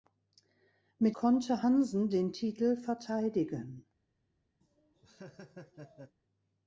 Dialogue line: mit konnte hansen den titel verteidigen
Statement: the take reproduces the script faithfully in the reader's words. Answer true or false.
true